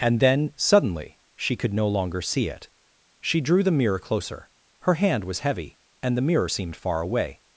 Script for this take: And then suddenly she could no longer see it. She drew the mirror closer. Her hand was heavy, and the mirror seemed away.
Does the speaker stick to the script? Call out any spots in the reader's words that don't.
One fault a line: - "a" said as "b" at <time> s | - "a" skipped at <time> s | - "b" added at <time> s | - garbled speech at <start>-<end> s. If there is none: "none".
- "far" added at 6.8 s